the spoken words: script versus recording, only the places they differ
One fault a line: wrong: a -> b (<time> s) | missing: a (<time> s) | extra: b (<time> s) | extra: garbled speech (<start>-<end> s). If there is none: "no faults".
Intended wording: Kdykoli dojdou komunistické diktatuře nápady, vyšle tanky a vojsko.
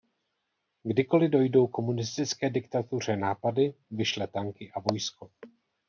no faults